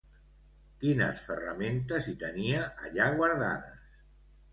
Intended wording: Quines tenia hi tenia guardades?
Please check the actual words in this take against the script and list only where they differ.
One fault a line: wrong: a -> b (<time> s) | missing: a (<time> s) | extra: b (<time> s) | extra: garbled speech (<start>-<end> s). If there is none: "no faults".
wrong: tenia -> ferramentes (1.2 s)
extra: allà (2.9 s)